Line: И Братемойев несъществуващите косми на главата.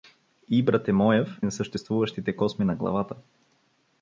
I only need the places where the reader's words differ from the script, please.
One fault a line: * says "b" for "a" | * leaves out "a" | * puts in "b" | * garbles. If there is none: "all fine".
all fine